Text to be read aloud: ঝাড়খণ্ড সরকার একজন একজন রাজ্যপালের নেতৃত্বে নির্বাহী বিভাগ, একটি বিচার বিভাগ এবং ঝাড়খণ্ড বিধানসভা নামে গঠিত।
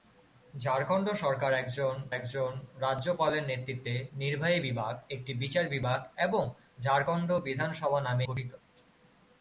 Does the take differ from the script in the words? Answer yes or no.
no